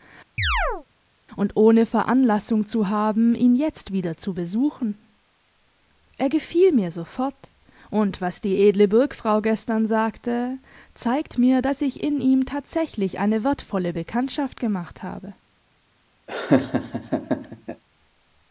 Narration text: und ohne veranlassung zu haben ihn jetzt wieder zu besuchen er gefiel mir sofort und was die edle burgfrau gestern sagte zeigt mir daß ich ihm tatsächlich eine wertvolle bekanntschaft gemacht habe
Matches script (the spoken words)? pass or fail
fail